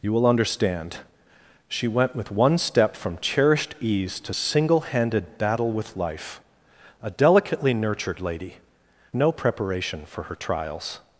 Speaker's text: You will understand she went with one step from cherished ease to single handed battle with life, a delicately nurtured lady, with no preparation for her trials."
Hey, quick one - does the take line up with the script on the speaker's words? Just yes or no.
no